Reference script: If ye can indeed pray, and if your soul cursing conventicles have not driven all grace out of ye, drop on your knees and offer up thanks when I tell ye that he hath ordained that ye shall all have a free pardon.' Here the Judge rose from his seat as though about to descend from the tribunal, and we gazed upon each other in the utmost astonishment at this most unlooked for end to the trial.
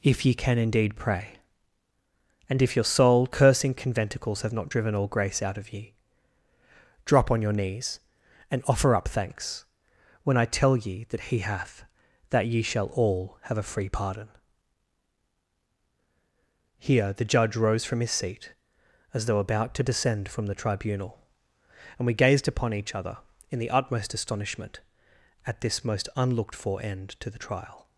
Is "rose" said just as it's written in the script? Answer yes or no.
yes